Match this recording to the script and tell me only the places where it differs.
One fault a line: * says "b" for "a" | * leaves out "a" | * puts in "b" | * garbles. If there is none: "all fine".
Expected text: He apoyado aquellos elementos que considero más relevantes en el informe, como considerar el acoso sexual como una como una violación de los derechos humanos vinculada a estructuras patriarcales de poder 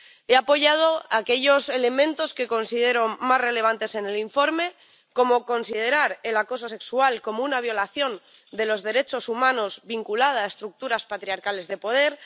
* leaves out "como una"